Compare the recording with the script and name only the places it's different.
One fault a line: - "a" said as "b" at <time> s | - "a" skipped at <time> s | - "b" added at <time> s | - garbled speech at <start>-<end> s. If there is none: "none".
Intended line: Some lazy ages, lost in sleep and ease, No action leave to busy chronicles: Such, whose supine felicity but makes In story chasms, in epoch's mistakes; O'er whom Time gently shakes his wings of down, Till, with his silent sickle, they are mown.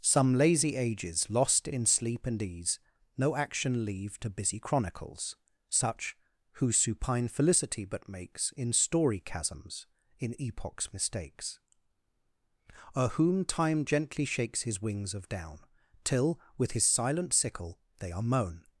none